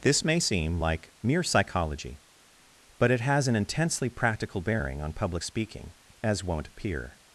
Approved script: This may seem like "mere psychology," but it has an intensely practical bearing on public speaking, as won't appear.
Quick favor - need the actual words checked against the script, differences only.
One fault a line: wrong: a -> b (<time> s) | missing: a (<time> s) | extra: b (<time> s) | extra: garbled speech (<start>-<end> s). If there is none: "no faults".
no faults